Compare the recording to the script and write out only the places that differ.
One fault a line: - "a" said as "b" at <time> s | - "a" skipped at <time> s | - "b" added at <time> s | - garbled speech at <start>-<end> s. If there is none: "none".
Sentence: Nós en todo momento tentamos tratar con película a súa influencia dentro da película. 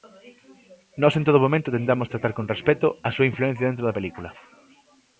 - "película" said as "respecto" at 2.5 s